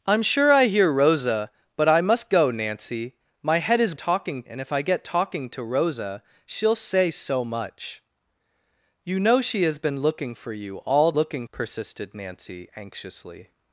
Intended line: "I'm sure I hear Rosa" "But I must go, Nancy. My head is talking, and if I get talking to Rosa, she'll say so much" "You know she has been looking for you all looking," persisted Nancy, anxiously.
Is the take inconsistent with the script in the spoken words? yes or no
no